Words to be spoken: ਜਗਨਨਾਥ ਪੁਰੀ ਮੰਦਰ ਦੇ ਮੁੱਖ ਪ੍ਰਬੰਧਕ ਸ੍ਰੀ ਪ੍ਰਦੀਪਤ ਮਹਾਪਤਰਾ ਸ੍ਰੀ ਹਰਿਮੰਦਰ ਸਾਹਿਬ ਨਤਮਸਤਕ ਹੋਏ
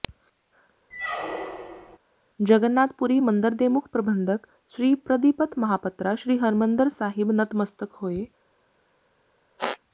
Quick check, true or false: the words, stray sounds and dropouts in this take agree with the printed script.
false